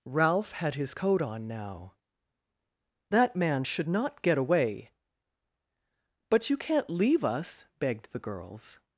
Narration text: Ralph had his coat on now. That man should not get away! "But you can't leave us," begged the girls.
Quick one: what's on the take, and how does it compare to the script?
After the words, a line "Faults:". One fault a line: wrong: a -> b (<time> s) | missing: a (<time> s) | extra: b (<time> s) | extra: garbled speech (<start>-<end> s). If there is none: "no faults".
Ralph had his coat on now. That man should not get away! "But you can't leave us," begged the girls.
Faults:
no faults